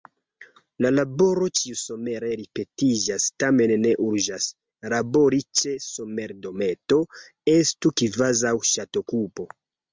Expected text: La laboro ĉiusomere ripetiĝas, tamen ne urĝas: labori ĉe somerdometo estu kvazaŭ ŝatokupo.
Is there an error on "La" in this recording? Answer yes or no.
no